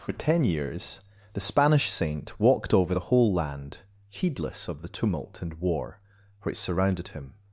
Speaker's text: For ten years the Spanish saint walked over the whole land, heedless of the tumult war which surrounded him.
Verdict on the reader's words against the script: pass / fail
fail